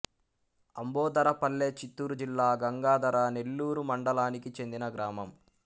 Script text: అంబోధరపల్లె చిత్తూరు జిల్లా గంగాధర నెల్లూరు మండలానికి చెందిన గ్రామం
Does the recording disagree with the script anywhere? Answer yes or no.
no